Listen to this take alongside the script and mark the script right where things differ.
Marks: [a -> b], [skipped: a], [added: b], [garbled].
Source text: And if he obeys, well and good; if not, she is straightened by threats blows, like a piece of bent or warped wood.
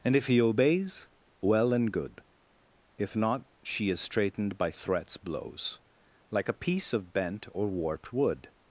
And if he obeys, well and good; if not, she is straightened by threats blows, like a piece of bent or warped wood.